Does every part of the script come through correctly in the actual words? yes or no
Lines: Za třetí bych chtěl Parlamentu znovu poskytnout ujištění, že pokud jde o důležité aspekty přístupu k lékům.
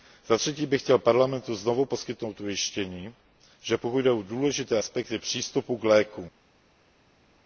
yes